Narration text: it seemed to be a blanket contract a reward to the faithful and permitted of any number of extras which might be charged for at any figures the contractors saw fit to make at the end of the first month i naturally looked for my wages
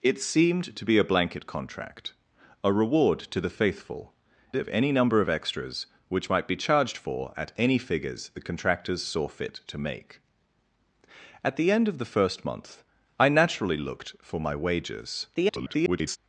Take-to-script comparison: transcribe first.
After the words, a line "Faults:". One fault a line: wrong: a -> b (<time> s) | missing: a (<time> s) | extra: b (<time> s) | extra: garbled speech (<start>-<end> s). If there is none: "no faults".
it seemed to be a blanket contract a reward to the faithful of any number of extras which might be charged for at any figures the contractors saw fit to make at the end of the first month i naturally looked for my wages [garbled]
Faults:
missing: and permitted (4.1 s)
extra: garbled speech (15.3-16.2 s)